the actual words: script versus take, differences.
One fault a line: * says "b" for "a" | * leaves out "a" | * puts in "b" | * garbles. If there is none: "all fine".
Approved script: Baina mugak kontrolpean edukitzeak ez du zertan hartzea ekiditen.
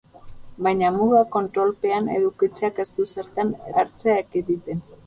all fine